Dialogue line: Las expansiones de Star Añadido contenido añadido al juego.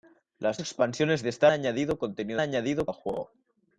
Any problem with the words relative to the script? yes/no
no